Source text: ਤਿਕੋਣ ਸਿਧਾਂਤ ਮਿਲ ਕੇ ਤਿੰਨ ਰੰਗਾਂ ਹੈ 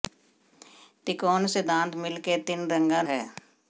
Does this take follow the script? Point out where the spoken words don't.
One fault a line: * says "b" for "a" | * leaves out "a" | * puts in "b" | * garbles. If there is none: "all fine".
all fine